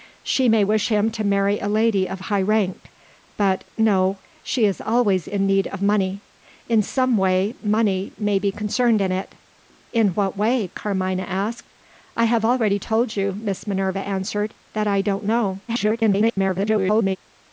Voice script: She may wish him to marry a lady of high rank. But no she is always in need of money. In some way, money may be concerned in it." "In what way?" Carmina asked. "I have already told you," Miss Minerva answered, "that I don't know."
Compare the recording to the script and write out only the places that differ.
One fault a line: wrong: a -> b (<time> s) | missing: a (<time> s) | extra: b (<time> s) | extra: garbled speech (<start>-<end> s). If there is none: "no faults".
extra: garbled speech (15.7-17.2 s)